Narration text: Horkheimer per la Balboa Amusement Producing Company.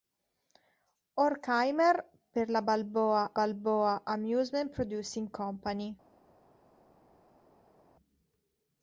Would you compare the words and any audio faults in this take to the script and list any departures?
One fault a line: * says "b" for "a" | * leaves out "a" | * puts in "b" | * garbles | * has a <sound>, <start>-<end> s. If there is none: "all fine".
* puts in "Balboa"